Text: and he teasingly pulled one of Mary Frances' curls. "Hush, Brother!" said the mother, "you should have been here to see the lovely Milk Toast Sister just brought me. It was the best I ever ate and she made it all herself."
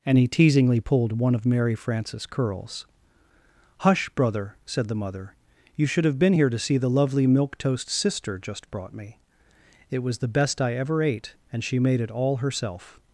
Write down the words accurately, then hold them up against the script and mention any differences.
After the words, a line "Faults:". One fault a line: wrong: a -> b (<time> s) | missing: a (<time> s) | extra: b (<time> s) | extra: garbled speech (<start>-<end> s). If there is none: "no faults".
and he teasingly pulled one of Mary Frances' curls. "Hush, Brother!" said the mother, "you should have been here to see the lovely Milk Toast Sister just brought me. It was the best I ever ate and she made it all herself."
Faults:
no faults